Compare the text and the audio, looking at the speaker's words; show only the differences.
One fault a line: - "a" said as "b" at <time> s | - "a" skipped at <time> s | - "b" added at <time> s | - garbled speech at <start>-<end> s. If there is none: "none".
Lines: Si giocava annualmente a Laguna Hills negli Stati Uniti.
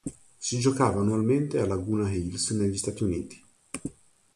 none